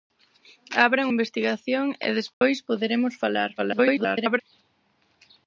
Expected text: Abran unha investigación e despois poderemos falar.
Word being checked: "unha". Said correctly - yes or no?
no